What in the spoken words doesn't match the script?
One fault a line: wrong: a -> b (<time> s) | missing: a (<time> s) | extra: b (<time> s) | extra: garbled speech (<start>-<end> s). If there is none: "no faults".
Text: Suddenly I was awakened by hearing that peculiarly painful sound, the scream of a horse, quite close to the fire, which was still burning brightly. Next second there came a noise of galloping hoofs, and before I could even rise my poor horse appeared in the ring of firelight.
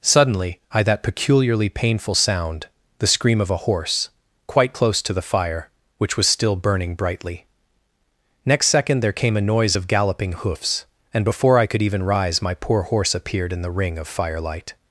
missing: was awakened by hearing (0.8 s)